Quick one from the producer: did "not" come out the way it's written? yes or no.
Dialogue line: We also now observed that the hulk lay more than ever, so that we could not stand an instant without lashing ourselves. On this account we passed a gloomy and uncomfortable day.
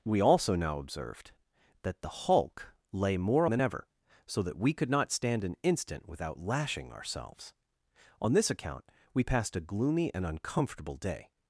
yes